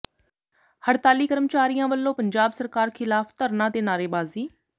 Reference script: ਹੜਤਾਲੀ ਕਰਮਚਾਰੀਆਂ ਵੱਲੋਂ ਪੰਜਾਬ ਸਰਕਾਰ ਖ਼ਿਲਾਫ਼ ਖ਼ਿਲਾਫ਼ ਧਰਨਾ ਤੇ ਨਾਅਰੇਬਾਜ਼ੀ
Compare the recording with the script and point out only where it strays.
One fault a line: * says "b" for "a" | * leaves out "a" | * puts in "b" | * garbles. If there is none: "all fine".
* leaves out "ਖ਼ਿਲਾਫ਼"